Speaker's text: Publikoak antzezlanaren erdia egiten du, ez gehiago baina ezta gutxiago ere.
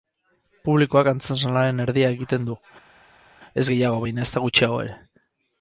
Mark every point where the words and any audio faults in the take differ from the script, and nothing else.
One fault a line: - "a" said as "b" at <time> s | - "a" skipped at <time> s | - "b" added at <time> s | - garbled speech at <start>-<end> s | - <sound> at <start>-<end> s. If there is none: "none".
none